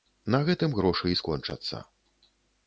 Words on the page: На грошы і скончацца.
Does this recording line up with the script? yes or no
no